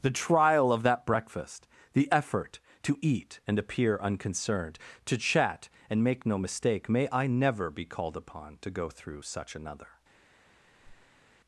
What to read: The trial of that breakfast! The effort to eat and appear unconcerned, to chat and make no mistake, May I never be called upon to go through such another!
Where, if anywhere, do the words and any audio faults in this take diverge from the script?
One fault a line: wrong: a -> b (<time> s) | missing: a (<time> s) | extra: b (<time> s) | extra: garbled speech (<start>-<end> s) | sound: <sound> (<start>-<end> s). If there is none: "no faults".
sound: squeak (10.6-11.2 s)